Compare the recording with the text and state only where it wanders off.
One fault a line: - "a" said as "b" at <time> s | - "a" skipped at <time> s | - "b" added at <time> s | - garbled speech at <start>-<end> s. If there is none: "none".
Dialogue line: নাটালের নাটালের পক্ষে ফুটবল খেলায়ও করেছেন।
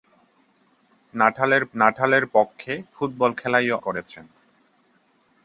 none